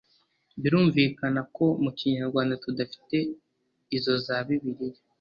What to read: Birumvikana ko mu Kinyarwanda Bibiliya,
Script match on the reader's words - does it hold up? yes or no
no